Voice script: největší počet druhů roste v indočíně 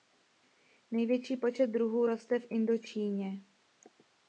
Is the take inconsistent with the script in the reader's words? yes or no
no